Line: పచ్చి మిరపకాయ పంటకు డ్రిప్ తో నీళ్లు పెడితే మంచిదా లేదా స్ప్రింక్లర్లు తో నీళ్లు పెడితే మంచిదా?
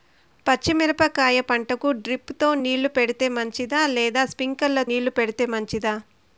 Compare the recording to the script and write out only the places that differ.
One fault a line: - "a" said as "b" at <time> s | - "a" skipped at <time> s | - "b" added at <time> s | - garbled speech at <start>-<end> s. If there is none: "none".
- "తో" skipped at 4.8 s